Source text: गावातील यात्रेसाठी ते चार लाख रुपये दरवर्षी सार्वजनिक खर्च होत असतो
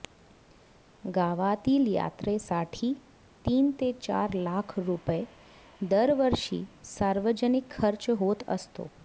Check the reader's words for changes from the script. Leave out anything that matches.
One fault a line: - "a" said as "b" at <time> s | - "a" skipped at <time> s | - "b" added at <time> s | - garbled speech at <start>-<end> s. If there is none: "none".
- "तीन" added at 3.5 s